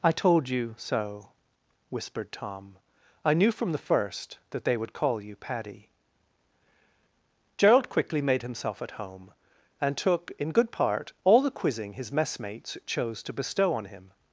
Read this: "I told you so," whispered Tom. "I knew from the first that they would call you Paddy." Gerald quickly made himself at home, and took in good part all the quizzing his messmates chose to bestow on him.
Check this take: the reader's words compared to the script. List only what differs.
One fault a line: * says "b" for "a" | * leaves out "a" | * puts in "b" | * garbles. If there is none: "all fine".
all fine